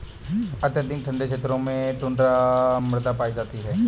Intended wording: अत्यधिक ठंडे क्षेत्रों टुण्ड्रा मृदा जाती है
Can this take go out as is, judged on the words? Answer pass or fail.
fail